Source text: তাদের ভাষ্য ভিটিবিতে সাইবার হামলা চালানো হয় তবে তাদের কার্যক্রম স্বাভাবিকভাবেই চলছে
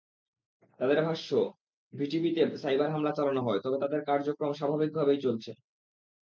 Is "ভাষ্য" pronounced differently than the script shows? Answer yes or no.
no